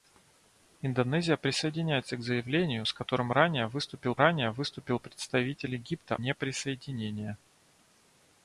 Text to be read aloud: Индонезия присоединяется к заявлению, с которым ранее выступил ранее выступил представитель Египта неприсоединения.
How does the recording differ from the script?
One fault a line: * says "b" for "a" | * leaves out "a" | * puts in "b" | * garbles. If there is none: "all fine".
all fine